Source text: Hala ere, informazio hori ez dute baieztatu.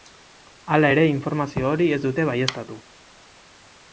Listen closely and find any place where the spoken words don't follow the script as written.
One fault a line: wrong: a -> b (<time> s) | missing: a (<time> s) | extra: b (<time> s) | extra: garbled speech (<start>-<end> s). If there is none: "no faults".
no faults